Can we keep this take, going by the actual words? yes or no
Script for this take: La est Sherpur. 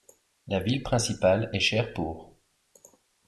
no